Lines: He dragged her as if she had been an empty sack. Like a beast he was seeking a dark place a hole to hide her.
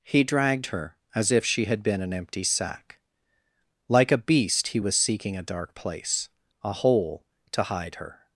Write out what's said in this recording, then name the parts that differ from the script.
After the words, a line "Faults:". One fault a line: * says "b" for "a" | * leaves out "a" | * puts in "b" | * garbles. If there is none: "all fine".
He dragged her as if she had been an empty sack. Like a beast he was seeking a dark place a hole to hide her.
Faults:
all fine